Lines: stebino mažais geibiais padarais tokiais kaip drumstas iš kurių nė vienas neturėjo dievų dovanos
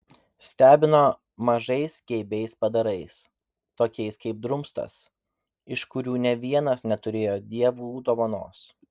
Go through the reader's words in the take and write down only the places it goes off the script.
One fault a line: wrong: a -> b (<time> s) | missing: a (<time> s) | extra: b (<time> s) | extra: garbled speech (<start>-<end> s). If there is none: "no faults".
no faults